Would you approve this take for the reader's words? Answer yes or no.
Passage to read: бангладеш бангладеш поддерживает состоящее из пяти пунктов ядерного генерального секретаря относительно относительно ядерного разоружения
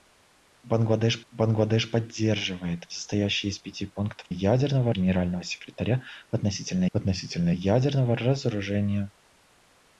yes